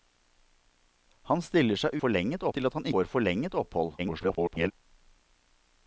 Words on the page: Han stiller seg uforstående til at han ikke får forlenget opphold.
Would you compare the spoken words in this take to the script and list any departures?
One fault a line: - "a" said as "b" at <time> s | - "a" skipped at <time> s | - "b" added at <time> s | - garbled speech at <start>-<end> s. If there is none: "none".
- "uforstående" said as "forlenget" at 2.0 s
- "ikke" skipped at 2.9 s
- garbled speech at 4.0-4.7 s